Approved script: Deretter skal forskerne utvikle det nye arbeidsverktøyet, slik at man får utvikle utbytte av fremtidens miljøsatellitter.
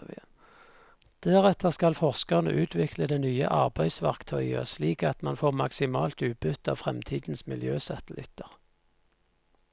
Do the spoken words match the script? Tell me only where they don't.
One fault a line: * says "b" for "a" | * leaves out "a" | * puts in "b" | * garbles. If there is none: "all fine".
* says "maksimalt" for "utvikle"